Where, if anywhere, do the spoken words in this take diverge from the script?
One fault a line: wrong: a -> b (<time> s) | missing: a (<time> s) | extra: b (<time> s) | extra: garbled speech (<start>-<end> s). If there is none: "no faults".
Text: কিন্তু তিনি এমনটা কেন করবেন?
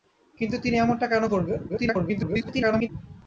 extra: garbled speech (1.7-2.9 s)